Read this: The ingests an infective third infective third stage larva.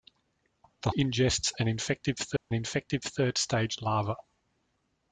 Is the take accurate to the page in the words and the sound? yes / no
no